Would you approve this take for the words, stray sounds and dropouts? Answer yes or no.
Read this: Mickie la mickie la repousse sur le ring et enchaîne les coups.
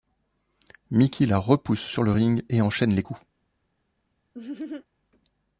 no